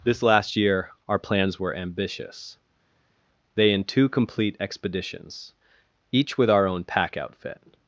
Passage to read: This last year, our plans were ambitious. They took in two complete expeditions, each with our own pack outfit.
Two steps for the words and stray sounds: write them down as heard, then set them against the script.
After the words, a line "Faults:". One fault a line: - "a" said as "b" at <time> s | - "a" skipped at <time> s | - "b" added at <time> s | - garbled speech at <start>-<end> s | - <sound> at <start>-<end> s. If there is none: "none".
This last year, our plans were ambitious. They in two complete expeditions, each with our own pack outfit.
Faults:
- "took" skipped at 3.7 s